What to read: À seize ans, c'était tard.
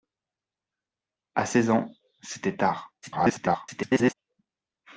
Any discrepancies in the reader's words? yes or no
yes